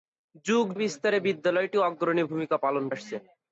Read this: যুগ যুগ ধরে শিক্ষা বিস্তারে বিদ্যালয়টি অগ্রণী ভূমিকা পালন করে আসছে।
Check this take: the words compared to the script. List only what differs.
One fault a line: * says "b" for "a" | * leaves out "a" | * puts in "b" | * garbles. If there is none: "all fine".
* leaves out "যুগ ধরে শিক্ষা"
* leaves out "করে"